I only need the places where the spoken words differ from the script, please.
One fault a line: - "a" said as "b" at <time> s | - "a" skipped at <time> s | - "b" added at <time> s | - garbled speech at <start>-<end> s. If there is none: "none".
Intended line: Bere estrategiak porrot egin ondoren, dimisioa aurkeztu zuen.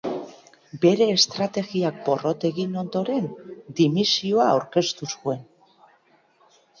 none